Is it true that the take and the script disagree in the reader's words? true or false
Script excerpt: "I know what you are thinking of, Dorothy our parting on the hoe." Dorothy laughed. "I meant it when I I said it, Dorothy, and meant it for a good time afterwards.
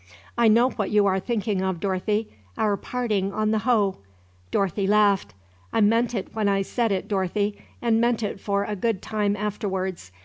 true